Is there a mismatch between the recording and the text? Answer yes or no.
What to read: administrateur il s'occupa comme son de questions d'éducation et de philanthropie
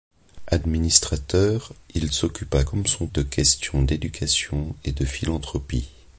no